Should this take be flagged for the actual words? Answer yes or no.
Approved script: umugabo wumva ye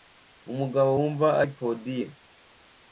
yes